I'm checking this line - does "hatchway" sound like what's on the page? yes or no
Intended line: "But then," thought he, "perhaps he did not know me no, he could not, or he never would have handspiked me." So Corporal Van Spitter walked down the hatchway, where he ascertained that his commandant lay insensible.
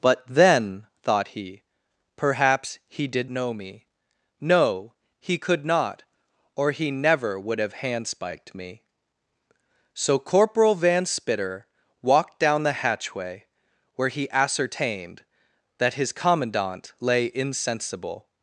yes